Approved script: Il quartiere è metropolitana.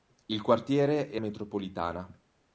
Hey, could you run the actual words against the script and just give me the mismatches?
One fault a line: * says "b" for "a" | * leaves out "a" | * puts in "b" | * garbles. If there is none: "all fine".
all fine